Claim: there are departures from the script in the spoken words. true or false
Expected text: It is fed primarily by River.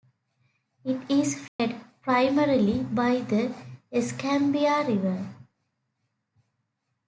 true